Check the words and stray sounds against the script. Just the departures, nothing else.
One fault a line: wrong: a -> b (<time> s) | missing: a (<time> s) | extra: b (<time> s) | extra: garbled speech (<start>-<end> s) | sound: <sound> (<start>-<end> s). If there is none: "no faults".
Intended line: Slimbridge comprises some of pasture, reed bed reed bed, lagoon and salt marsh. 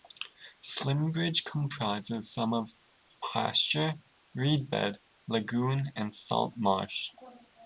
missing: reed bed (5.0 s)